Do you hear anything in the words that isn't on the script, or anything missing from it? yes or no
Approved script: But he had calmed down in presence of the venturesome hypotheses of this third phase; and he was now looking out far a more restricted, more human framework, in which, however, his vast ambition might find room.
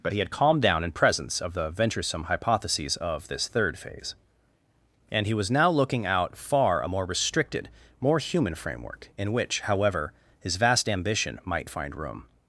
no